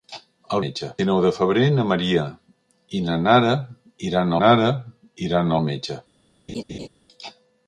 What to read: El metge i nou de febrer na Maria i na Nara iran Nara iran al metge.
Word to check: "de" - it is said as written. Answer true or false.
true